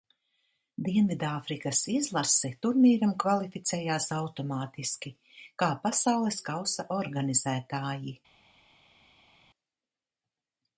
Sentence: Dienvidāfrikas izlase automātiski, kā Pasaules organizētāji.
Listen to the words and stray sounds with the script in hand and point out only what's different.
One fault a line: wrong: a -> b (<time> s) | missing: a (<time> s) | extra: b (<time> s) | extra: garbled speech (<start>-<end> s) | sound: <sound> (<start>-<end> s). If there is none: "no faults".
extra: turnīram kvalificējās (2.6 s)
extra: kausa (6.5 s)